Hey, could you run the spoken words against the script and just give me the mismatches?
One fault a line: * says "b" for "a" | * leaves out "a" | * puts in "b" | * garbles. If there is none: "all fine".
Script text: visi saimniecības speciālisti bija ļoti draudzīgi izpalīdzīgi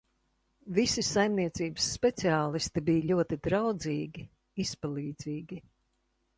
all fine